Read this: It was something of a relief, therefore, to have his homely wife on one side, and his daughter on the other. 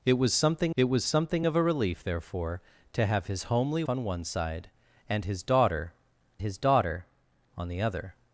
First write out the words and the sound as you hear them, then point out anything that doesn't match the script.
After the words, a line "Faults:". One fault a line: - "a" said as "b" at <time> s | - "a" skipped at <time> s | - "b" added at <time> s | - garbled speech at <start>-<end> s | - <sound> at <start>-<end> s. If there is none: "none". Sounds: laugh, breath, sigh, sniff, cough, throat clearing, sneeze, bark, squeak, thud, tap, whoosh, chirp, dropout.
It was something it was something of a relief, therefore, to have his homely on one side, and his daughter his daughter on the other.
Faults:
- "it was something" added at 0.7 s
- "wife" skipped at 3.8 s
- "his daughter" added at 6.4 s